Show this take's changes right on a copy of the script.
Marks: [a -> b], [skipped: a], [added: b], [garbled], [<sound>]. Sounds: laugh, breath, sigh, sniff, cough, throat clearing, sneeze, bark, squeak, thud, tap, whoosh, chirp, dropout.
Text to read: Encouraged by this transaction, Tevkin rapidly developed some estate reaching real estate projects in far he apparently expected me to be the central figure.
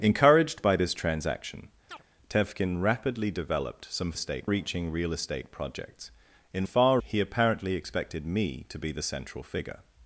Encouraged by this transaction, [chirp] Tevkin rapidly developed some estate reaching real estate projects in far he apparently expected me to be the central figure.